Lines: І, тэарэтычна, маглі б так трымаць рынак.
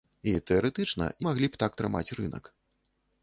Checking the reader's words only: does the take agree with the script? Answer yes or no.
yes